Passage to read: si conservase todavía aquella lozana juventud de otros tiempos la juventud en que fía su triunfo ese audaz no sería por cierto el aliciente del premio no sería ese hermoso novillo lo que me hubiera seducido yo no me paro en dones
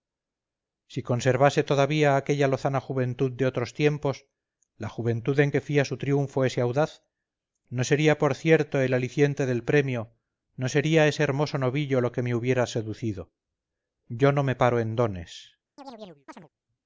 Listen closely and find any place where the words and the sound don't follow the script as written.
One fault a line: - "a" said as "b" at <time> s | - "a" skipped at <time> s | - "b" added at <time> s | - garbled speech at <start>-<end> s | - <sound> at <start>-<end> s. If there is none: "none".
- chirp at 15.8-16.5 s